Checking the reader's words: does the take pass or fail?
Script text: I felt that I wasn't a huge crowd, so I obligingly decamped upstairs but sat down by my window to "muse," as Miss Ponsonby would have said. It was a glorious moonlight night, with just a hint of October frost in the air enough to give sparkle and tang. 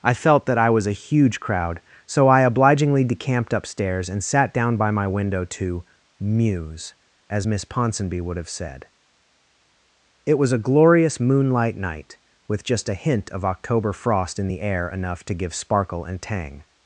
fail